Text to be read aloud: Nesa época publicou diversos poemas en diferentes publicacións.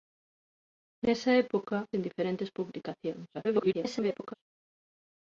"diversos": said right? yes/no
no